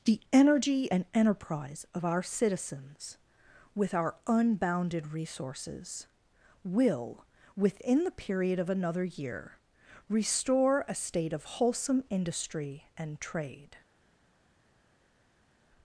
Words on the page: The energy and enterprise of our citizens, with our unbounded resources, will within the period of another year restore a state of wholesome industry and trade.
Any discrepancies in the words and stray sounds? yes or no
no